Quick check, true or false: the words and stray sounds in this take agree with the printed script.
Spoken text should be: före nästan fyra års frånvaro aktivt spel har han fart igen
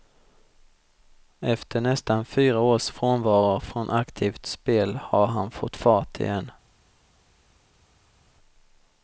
false